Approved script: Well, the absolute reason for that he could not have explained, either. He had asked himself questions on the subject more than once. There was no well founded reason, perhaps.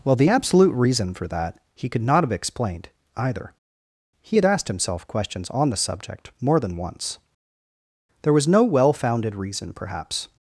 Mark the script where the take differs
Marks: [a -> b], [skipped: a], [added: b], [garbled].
Well, the absolute reason for that he could not have explained, either. He had asked himself questions on the subject more than once. There was no well founded reason, perhaps.